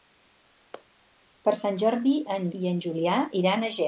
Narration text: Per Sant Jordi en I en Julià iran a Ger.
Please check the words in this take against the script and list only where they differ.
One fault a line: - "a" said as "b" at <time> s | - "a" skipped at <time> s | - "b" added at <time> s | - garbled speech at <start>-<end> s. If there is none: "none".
none